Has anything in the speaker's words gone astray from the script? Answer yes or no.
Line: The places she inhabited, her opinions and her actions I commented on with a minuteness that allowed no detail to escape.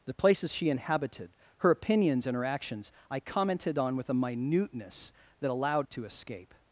yes